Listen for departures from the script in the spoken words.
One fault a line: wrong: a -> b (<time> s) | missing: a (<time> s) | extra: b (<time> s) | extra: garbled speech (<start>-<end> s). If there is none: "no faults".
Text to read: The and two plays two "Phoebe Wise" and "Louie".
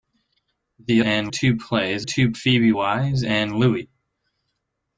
no faults